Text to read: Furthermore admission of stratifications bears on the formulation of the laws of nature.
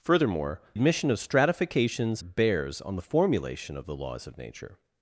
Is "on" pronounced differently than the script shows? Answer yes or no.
no